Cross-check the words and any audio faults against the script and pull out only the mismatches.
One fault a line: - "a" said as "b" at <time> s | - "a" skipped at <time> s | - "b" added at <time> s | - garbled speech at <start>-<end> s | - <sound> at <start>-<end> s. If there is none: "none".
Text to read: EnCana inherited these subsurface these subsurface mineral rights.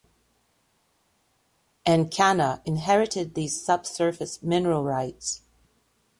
- "these subsurface" skipped at 4.4 s